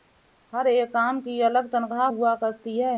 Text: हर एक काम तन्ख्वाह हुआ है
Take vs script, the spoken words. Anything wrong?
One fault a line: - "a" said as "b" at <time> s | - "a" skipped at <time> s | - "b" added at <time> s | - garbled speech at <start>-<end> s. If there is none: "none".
- "की अलग" added at 1.2 s
- "करती" added at 2.4 s